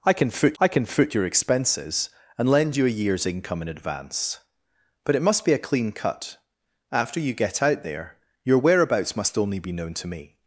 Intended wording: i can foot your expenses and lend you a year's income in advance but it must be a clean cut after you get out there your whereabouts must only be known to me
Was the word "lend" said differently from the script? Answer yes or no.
no